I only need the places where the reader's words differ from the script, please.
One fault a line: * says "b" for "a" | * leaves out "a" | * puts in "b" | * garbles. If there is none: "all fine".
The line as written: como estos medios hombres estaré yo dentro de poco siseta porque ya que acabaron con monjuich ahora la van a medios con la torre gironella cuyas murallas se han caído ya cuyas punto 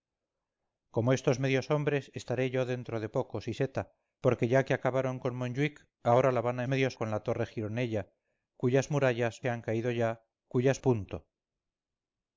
all fine